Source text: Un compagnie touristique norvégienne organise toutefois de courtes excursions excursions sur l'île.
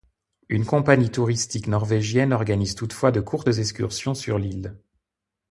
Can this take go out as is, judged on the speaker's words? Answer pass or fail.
fail